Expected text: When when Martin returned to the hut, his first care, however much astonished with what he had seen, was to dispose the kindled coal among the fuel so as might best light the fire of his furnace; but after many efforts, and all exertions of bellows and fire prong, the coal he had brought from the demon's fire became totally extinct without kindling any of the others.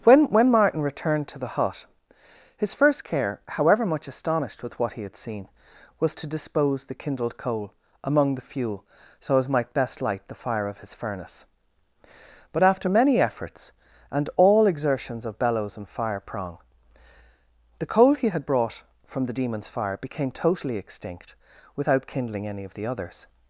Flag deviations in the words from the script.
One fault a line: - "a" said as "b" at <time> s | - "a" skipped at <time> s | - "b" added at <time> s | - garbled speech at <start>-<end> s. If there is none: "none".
none